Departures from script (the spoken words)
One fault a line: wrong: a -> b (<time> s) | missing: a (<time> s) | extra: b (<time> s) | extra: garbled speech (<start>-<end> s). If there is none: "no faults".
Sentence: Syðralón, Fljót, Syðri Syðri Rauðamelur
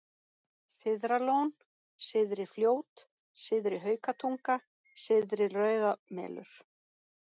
extra: Syðri (2.1 s)
extra: Haukatunga (3.9 s)